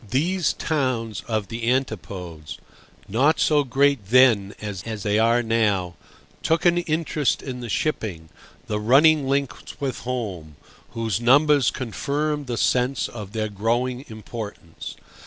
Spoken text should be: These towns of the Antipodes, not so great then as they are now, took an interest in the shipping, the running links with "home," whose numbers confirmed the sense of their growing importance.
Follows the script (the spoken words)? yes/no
no